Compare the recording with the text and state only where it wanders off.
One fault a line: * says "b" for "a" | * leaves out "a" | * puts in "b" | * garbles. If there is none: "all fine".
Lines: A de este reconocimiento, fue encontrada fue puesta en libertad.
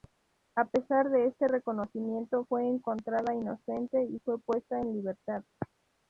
* puts in "pesar"
* puts in "inocente y"